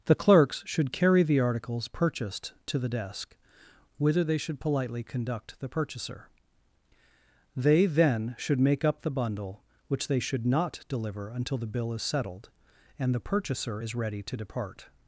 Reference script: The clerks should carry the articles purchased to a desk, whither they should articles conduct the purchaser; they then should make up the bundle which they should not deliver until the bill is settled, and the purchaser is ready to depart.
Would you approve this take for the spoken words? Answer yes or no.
no